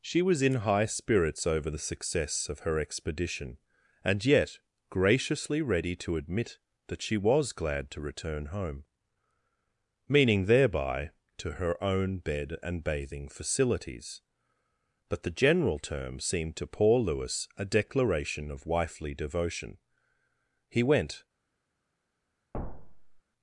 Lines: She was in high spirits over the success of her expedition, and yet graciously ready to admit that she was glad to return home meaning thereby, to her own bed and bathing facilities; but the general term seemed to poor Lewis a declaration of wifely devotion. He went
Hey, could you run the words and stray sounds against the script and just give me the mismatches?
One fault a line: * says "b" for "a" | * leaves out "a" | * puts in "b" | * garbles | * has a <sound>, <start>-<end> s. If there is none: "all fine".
* has a thud, 22.5-23.2 s